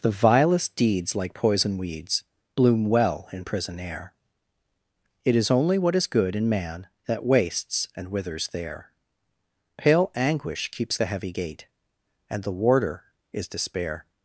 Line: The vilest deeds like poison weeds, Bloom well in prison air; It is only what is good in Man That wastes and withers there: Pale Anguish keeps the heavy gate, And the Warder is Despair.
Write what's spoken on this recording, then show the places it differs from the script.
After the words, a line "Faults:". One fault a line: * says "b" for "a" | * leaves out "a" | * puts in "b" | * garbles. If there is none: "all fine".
The vilest deeds like poison weeds, Bloom well in prison air; It is only what is good in Man That wastes and withers there: Pale Anguish keeps the heavy gate, And the Warder is Despair.
Faults:
all fine